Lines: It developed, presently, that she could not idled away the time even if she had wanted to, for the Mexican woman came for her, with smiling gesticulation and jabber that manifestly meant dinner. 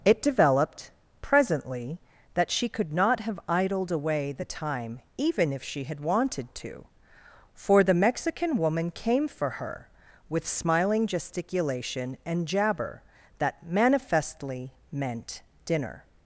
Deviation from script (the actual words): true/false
true